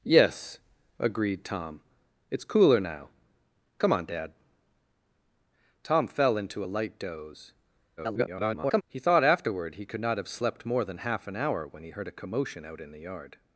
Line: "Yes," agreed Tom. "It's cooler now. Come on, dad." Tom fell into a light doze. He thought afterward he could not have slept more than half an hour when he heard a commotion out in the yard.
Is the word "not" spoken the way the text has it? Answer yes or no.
yes